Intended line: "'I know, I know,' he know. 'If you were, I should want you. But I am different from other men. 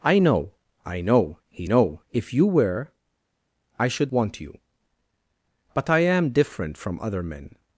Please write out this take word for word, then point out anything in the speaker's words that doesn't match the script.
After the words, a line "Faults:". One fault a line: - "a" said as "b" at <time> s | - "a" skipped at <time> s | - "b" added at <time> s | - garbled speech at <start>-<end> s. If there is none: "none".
"'I know, I know,' he know. 'If you were, I should want you. But I am different from other men.
Faults:
none